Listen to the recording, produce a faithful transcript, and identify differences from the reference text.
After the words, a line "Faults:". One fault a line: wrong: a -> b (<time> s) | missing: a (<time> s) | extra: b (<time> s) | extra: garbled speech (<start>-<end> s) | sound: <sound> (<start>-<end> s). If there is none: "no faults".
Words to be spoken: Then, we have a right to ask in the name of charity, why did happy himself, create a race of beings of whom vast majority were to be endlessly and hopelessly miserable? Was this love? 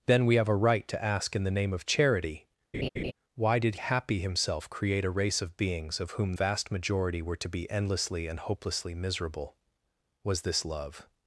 Then, we have a right to ask in the name of charity, why did happy himself, create a race of beings of whom vast majority were to be endlessly and hopelessly miserable? Was this love?
Faults:
sound: laugh (2.7-3.1 s)